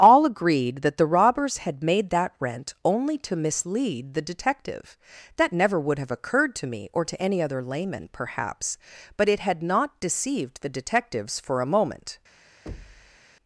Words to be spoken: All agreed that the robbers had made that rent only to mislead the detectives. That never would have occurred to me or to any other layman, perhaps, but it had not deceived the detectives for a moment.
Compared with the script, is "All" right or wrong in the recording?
right